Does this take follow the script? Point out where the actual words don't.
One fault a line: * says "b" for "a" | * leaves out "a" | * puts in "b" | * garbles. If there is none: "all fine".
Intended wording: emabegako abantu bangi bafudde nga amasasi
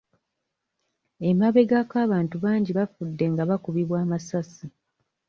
* puts in "bakubibwa"